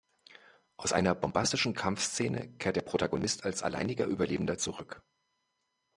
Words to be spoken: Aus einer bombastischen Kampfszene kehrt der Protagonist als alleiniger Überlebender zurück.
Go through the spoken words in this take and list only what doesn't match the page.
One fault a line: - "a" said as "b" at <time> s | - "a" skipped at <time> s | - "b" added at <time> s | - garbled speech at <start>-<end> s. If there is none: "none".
none